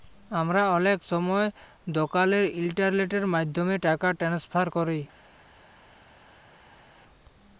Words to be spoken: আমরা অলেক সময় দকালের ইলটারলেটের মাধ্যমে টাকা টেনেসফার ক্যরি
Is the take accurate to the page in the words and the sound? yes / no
yes